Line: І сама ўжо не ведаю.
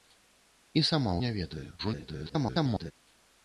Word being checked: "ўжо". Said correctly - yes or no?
no